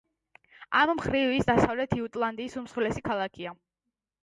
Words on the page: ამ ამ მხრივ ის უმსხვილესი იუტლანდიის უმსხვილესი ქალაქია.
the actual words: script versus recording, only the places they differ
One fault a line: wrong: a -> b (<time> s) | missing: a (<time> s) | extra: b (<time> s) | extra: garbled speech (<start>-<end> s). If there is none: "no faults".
missing: ამ (0.9 s)
wrong: უმსხვილესი -> დასავლეთ (1.5 s)